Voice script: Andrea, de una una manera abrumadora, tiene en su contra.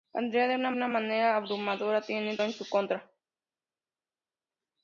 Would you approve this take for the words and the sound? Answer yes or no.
yes